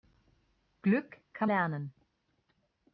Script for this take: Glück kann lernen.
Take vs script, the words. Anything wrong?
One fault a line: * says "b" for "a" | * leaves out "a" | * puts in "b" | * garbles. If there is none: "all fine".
all fine